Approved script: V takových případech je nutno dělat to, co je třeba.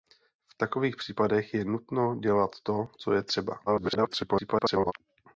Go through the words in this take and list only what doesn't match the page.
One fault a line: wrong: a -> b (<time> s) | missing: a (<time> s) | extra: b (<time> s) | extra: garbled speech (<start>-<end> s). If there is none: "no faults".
extra: garbled speech (3.7-4.9 s)